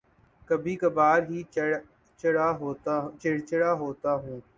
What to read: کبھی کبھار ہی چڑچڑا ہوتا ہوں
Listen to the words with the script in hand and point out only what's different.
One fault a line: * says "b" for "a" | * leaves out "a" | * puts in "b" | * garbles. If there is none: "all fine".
all fine